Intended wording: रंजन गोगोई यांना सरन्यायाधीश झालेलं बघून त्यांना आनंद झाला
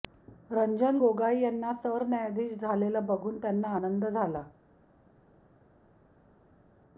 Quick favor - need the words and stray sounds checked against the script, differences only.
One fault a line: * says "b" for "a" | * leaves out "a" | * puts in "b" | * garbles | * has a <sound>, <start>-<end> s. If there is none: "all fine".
all fine